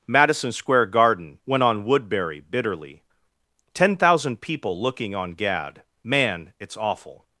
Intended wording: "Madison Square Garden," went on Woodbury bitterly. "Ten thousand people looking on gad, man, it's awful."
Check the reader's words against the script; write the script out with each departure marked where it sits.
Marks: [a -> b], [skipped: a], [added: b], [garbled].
"Madison Square Garden," went on Woodbury bitterly. "Ten thousand people looking on gad, man, it's awful."